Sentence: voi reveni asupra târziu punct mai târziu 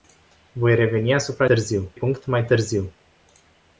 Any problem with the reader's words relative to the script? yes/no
no